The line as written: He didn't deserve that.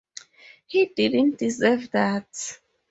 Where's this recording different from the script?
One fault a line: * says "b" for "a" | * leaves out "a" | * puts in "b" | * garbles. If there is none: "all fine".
all fine